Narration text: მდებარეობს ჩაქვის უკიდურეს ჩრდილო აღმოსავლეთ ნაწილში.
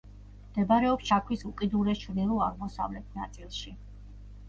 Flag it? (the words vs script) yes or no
no